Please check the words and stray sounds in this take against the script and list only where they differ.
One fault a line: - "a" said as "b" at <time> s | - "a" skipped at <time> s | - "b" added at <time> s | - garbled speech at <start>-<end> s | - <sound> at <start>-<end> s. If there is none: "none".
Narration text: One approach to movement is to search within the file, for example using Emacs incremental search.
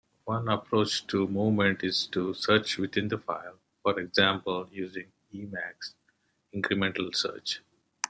none